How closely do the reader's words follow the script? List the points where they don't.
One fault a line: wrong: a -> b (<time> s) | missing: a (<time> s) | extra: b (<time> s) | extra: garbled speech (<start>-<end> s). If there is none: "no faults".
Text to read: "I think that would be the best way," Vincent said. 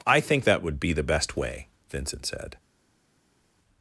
no faults